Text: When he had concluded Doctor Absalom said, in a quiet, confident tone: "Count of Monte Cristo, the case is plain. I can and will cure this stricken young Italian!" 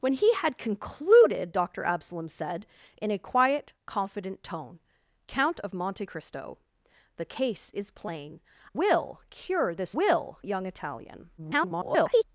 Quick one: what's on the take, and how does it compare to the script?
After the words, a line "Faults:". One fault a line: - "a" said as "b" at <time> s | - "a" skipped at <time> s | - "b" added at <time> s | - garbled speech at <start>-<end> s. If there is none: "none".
When he had concluded Doctor Absalom said, in a quiet, confident tone: "Count of Monte Cristo, the case is plain. will cure this will young Italian!" [garbled]
Faults:
- "I can and" skipped at 8.4 s
- "stricken" said as "will" at 10.0 s
- garbled speech at 11.4-12.2 s